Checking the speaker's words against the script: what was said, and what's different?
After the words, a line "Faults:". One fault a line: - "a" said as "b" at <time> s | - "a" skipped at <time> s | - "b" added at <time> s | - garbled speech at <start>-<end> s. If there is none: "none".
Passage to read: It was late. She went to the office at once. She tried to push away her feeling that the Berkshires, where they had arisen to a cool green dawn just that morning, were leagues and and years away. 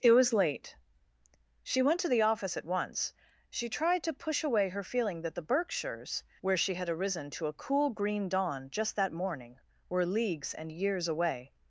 It was late. She went to the office at once. She tried to push away her feeling that the Berkshires, where she had arisen to a cool green dawn just that morning, were leagues and years away.
Faults:
- "they" said as "she" at 6.6 s
- "and" skipped at 10.7 s